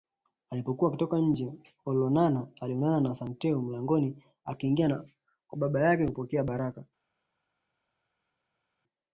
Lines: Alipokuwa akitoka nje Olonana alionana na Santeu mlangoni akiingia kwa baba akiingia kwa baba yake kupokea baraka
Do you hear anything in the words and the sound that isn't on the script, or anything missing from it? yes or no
yes